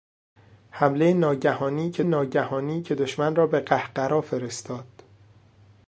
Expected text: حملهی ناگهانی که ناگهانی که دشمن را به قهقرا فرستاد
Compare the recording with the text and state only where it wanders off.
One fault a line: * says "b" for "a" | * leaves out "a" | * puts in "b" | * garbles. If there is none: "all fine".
all fine